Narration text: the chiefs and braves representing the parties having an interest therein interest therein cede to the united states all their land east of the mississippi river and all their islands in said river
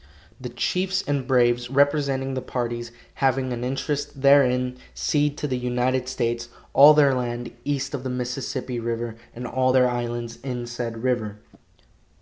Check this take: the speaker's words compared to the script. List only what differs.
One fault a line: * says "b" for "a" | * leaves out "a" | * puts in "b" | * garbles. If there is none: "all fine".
* leaves out "interest therein"